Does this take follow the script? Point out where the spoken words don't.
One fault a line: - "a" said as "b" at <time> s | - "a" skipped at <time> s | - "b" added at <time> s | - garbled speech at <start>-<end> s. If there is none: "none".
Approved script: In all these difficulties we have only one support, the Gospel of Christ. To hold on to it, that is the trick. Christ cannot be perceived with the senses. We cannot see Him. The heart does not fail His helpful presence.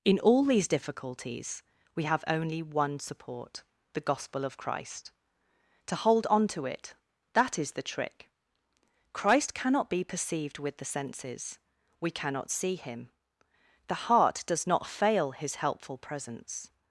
none